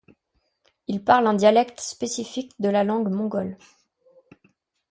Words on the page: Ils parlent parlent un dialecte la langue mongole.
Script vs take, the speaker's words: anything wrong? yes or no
yes